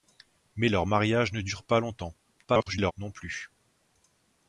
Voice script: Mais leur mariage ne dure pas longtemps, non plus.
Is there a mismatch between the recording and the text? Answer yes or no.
yes